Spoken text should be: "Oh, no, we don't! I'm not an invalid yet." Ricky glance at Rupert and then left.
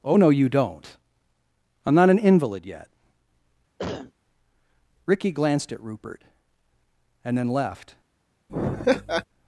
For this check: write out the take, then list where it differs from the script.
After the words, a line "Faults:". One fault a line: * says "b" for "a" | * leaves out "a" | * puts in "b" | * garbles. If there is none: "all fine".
"Oh, no, you don't! I'm not an invalid yet." Ricky glanced at Rupert and then left.
Faults:
* says "you" for "we"
* says "glanced" for "glance"